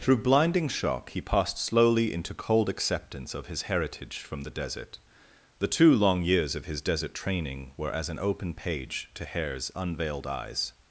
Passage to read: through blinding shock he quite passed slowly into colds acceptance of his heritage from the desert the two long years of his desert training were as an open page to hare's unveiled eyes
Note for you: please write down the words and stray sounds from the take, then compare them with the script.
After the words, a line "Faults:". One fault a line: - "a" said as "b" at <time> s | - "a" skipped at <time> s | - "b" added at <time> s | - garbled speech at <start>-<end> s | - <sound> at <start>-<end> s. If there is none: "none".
through blinding shock he passed slowly into cold acceptance of his heritage from the desert the two long years of his desert training were as an open page to hare's unveiled eyes
Faults:
- "quite" skipped at 1.2 s
- "colds" said as "cold" at 2.3 s